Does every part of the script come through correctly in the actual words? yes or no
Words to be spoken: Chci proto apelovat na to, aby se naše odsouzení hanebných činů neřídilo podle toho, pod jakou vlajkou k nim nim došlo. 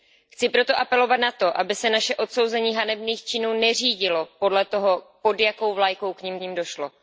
yes